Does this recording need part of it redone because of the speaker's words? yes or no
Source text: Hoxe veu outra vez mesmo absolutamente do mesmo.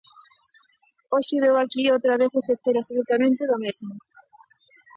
yes